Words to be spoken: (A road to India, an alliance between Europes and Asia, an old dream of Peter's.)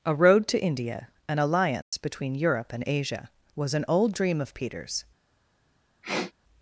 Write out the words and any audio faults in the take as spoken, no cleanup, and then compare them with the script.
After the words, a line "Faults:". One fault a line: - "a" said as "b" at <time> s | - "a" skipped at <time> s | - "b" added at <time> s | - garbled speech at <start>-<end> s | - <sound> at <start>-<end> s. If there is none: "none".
(A road to India, an alliance between Europe and Asia, was an old dream of Peter's.)
Faults:
- dropout at 1.8-1.9 s
- "Europes" said as "Europe" at 2.3 s
- "was" added at 3.5 s
- sniff at 6.0-6.3 s